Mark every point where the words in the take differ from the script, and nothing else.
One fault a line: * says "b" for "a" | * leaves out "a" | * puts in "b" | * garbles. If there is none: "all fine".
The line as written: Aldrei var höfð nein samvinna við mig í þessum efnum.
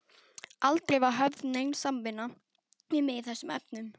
all fine